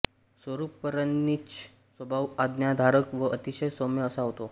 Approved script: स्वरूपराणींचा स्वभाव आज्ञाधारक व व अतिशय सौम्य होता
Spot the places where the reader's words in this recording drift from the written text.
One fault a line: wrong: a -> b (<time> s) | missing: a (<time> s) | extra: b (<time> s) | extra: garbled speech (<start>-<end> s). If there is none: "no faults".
missing: व (3.3 s)
extra: असा (4.0 s)